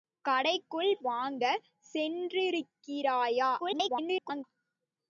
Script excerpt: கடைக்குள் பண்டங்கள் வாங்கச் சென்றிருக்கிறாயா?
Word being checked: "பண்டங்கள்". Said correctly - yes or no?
no